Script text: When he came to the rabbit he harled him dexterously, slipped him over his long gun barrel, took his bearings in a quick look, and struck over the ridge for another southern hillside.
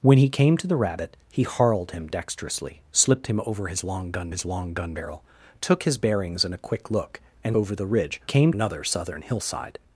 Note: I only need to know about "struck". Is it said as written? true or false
false